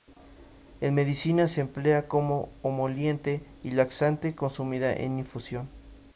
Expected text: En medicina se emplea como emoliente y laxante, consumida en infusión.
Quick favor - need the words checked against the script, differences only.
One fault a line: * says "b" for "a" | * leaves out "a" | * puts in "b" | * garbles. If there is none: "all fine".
all fine